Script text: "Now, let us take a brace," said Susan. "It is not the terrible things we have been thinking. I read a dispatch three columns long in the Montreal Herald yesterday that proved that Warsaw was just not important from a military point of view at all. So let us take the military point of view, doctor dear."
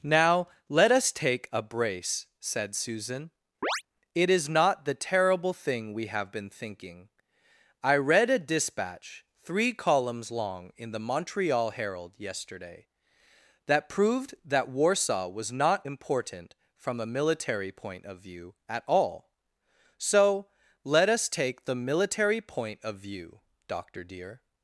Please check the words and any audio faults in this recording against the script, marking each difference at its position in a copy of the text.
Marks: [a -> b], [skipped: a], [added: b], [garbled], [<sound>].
"Now, let us take a brace," said Susan. [chirp] "It is not the terrible [things -> thing] we have been thinking. I read a dispatch three columns long in the Montreal Herald yesterday that proved that Warsaw was [skipped: just] not important from a military point of view at all. So let us take the military point of view, doctor dear."